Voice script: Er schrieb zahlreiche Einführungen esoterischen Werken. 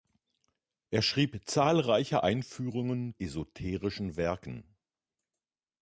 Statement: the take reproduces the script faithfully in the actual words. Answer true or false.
true